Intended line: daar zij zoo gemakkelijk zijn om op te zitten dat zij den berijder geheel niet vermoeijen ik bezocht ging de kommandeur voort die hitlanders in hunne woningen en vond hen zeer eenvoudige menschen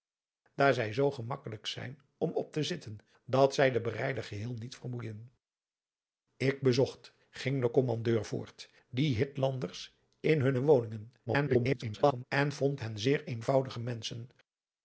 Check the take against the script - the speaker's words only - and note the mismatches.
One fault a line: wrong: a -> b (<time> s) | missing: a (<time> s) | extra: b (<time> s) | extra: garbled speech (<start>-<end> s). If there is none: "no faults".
extra: garbled speech (11.3-12.2 s)